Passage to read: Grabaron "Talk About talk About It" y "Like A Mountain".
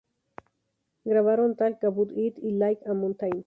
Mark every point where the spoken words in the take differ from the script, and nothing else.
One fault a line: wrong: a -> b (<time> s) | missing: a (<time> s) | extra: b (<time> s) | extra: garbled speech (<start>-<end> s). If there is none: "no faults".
missing: talk About (2.1 s)